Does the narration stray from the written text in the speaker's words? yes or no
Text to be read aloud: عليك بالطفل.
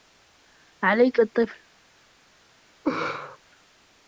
no